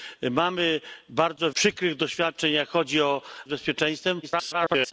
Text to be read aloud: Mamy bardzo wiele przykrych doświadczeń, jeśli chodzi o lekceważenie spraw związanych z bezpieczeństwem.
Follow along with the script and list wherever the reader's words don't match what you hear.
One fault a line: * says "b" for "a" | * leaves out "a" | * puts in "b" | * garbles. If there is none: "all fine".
* leaves out "wiele"
* leaves out "lekceważenie spraw związanych"
* garbles